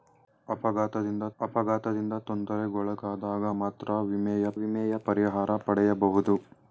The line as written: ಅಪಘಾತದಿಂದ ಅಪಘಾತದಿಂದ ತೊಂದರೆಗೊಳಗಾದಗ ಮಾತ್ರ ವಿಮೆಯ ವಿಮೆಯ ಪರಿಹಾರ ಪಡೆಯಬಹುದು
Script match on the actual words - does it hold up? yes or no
yes